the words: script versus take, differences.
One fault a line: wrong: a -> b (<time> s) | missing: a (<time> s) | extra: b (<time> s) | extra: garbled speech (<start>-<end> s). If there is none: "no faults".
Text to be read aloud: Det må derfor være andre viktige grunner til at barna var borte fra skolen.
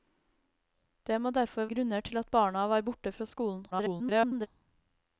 missing: være andre viktige (1.7 s)
extra: garbled speech (3.7-4.5 s)